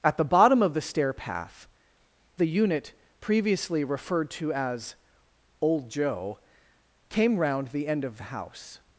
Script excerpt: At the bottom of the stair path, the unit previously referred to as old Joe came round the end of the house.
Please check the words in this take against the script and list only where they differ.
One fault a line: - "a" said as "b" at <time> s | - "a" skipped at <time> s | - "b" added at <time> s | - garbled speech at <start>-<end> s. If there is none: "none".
none